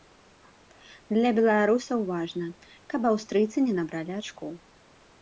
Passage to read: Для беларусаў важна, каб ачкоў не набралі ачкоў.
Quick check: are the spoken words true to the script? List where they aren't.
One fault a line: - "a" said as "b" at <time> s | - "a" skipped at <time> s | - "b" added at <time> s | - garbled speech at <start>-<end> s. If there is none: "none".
- "ачкоў" said as "аўстрыйцы" at 3.1 s